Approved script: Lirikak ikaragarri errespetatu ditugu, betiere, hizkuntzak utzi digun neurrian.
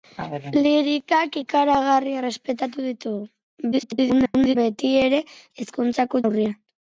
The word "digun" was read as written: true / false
false